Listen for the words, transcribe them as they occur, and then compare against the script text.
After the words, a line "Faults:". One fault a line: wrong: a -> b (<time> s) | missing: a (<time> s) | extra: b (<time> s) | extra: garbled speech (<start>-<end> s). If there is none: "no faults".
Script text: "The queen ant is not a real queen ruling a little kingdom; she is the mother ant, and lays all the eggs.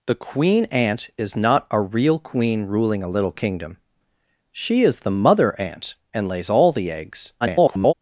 "The queen ant is not a real queen ruling a little kingdom; she is the mother ant, and lays all the eggs. [garbled]
Faults:
extra: garbled speech (7.4-7.9 s)